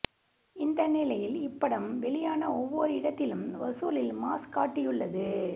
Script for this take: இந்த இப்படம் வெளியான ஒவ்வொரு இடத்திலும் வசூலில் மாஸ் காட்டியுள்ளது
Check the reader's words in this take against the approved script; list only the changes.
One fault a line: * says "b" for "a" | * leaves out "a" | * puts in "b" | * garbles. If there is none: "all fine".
* puts in "நிலையில்"